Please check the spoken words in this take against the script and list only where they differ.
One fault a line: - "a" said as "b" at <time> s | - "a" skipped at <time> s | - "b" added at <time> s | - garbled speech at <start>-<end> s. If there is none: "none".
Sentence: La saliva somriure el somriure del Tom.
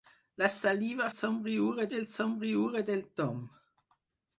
none